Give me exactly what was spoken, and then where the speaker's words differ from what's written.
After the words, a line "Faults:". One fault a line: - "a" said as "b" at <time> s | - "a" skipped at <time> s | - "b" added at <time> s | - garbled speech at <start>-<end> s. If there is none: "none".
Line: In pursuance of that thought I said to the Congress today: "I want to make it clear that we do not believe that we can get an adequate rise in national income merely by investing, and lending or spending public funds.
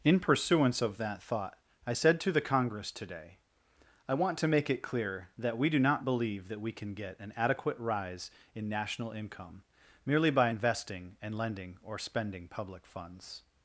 In pursuance of that thought I said to the Congress today: "I want to make it clear that we do not believe that we can get an adequate rise in national income merely by investing, and lending or spending public funds.
Faults:
none